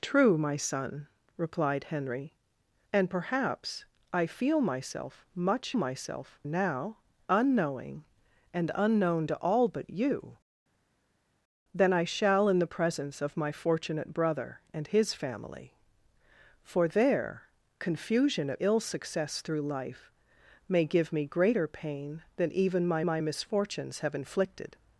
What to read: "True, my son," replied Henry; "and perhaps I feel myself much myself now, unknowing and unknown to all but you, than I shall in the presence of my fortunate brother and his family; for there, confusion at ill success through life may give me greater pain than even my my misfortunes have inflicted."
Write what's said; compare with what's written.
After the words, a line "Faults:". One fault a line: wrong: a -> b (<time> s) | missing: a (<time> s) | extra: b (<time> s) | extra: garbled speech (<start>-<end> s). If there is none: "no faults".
"True, my son," replied Henry; "and perhaps I feel myself much myself now, unknowing and unknown to all but you, than I shall in the presence of my fortunate brother and his family; for there, confusion at ill success through life may give me greater pain than even my my misfortunes have inflicted."
Faults:
no faults